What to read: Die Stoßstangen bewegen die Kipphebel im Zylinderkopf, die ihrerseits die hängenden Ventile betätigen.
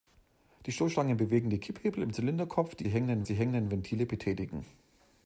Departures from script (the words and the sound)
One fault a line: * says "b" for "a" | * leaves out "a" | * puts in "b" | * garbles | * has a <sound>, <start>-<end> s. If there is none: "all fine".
* says "hängenden" for "ihrerseits"